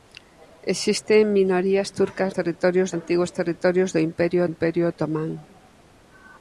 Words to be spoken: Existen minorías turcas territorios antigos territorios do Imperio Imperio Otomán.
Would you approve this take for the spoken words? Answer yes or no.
yes